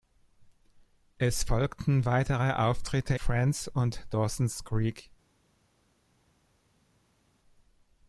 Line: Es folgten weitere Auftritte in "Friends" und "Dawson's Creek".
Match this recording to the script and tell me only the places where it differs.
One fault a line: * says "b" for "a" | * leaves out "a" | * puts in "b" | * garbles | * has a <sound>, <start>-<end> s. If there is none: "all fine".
* leaves out "in"